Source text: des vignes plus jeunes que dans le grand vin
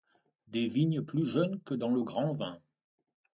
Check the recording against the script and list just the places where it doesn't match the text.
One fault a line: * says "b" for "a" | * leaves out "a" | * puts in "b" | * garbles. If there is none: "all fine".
all fine